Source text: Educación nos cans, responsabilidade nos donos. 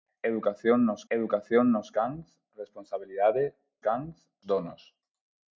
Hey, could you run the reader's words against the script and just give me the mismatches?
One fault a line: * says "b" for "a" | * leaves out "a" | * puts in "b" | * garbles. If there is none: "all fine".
* puts in "educación nos"
* says "cans" for "nos"